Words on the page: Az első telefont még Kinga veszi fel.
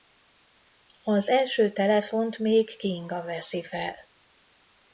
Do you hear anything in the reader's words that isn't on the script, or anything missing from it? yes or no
no